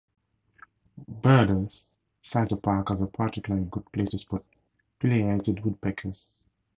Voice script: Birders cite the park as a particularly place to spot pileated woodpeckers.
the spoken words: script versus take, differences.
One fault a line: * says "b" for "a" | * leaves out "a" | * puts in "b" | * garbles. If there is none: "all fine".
* puts in "good"